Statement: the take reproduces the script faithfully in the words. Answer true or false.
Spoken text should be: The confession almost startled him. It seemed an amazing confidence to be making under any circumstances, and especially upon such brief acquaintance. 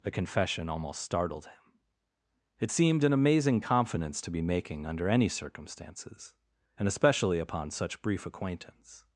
true